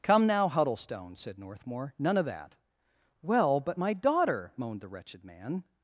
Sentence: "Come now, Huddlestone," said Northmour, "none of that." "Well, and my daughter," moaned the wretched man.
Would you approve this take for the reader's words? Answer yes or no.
no